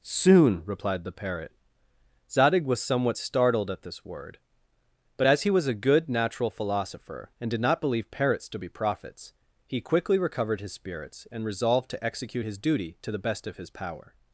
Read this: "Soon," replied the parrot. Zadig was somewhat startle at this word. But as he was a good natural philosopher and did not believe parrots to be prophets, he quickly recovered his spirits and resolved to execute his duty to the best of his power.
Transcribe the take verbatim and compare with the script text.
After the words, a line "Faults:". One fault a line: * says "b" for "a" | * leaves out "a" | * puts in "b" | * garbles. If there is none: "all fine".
"Soon," replied the parrot. Zadig was somewhat startled at this word. But as he was a good natural philosopher and did not believe parrots to be prophets, he quickly recovered his spirits and resolved to execute his duty to the best of his power.
Faults:
* says "startled" for "startle"